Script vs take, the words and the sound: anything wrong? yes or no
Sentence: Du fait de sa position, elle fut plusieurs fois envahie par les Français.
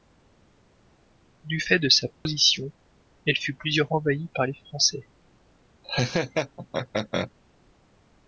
yes